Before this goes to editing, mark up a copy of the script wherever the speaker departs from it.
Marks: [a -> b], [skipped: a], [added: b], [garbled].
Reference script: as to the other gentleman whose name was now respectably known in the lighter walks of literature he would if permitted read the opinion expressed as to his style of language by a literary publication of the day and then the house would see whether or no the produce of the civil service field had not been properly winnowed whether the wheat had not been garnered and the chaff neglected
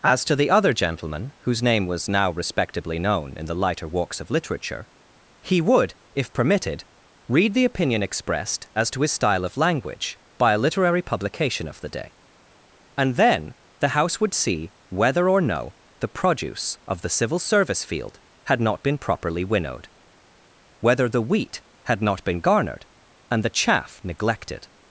as to the other gentleman whose name was now respectably known in the lighter walks of literature he would if permitted read the opinion expressed as to his style of language by a literary publication of the day and then the house would see whether or no the produce of the civil service field had not been properly winnowed whether the wheat had not been garnered and the chaff neglected